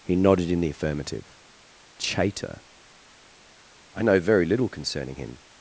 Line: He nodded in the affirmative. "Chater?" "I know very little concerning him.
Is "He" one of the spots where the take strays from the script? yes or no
no